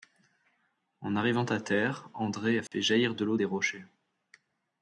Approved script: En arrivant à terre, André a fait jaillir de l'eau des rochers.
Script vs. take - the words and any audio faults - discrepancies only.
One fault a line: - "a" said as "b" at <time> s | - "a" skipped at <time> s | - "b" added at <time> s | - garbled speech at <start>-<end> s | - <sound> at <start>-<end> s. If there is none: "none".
- dropout at 2.7-2.7 s